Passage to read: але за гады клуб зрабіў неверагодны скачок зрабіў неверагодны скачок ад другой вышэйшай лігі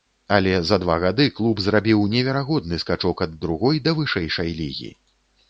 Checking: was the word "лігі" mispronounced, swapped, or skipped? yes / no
no